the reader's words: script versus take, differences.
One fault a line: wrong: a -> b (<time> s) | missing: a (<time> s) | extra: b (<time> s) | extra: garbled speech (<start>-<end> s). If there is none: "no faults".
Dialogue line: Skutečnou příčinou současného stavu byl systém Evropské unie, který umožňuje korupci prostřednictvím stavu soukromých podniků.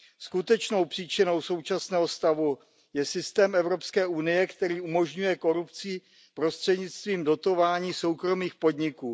wrong: byl -> je (2.9 s)
wrong: stavu -> dotování (7.2 s)